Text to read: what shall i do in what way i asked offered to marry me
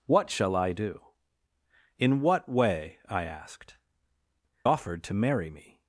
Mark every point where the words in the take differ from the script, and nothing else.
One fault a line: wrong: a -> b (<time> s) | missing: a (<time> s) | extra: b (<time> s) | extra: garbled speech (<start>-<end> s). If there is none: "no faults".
no faults